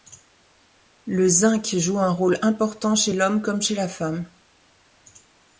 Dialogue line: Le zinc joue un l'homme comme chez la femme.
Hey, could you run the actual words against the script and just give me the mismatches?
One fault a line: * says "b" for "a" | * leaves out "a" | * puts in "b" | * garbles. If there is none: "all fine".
* puts in "rôle important chez"